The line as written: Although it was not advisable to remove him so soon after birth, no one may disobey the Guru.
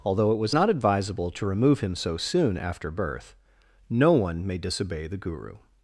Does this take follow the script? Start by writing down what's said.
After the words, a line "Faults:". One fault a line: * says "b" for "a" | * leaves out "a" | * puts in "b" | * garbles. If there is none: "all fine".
Although it was not advisable to remove him so soon after birth, no one may disobey the Guru.
Faults:
all fine